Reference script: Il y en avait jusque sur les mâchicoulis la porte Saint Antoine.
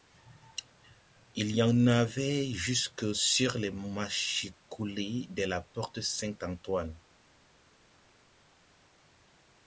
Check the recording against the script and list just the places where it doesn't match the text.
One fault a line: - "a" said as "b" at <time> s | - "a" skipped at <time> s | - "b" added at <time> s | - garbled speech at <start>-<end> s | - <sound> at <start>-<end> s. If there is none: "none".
- "de" added at 5.3 s